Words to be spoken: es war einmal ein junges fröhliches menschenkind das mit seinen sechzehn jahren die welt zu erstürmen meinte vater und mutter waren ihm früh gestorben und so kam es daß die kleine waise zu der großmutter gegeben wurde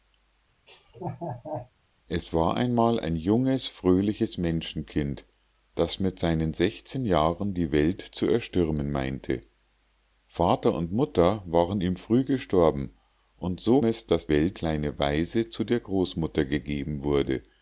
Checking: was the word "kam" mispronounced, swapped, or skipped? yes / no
yes